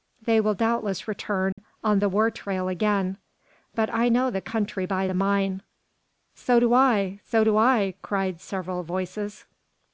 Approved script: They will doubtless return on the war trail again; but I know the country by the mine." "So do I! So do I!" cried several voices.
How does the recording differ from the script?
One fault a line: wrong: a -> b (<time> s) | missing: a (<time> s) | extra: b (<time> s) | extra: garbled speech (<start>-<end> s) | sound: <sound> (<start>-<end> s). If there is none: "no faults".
sound: dropout (1.5-1.6 s)